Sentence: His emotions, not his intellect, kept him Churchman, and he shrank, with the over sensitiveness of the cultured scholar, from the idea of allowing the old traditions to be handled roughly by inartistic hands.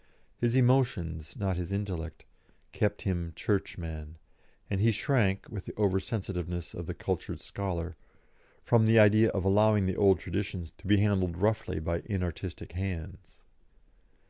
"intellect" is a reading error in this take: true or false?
false